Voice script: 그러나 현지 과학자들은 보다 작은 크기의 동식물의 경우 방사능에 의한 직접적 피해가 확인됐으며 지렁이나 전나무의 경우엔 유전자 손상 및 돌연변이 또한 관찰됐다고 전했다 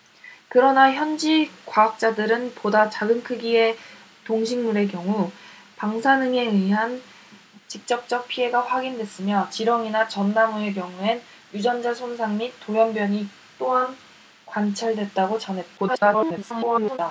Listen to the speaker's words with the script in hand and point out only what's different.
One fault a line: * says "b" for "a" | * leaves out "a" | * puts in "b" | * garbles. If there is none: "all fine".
* garbles